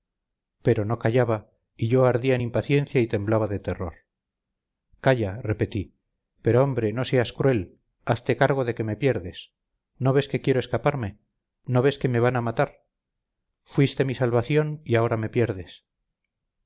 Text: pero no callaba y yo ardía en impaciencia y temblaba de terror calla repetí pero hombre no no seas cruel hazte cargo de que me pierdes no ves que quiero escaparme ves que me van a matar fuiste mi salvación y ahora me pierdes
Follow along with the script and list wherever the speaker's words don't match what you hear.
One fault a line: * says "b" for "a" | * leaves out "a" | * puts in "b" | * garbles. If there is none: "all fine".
* leaves out "no"
* puts in "no"